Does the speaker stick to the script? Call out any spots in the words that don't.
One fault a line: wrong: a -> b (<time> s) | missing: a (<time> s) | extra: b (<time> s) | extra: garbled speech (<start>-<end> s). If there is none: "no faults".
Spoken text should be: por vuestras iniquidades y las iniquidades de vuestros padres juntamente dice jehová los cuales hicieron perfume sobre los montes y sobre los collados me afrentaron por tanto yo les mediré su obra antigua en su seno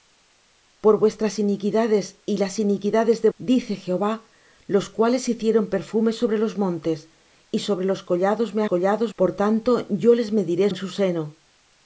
missing: vuestros padres juntamente (3.3 s)
wrong: afrentaron -> collados (8.6 s)
missing: su obra antigua (10.7 s)